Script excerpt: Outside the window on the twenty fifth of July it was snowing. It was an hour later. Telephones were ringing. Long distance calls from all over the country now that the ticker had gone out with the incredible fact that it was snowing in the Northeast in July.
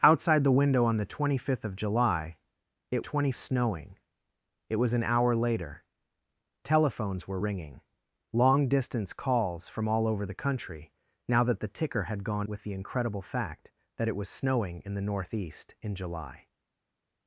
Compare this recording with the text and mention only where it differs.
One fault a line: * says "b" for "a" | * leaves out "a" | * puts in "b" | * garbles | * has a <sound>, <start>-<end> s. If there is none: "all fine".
* says "twenty" for "was"
* leaves out "out"